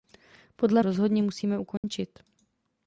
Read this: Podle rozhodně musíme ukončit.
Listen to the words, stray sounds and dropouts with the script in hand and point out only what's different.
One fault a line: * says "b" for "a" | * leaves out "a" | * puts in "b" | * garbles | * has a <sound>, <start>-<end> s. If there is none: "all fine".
* has a dropout, 1.8-1.8 s